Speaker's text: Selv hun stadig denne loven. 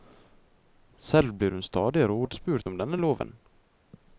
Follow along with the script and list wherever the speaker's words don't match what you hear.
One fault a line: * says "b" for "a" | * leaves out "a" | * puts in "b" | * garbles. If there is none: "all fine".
* puts in "blir"
* puts in "rådspurt om"